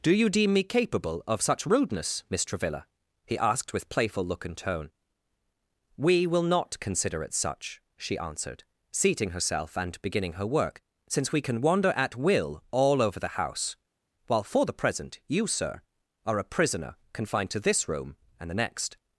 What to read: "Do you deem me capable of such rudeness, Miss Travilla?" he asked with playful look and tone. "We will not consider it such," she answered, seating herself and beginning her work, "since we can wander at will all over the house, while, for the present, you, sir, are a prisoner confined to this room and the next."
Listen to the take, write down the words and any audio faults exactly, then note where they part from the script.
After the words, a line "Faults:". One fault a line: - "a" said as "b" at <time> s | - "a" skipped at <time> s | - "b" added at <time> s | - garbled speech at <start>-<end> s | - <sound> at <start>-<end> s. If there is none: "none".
"Do you deem me capable of such rudeness, Miss Travilla?" he asked with playful look and tone. "We will not consider it such," she answered, seating herself and beginning her work, "since we can wander at will all over the house, while, for the present, you, sir, are a prisoner confined to this room and the next."
Faults:
none